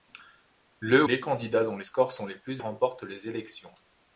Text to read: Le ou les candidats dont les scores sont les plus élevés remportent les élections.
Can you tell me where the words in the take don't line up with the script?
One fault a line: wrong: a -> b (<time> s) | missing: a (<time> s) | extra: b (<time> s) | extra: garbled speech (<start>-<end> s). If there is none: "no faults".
missing: ou (1.1 s)
missing: élevés (2.6 s)